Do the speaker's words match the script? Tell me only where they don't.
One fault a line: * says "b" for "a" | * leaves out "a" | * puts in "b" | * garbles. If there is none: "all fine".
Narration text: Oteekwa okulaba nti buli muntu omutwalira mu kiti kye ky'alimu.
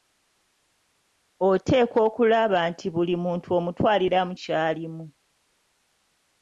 * leaves out "kiti kye"